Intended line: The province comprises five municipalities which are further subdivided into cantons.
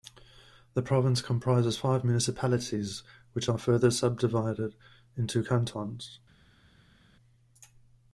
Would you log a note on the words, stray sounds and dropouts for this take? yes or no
no